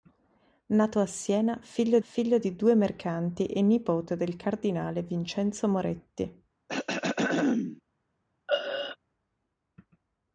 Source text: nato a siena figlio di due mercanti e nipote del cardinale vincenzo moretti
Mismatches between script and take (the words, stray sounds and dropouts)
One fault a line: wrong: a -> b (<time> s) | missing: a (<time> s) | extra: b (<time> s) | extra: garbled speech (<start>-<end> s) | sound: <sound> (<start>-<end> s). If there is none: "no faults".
extra: figlio (2.0 s)
sound: throat clearing (6.7-7.8 s)
sound: throat clearing (8.5-9.0 s)